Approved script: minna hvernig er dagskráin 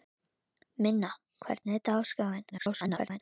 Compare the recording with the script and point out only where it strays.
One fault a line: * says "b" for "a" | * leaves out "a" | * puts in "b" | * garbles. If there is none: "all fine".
* garbles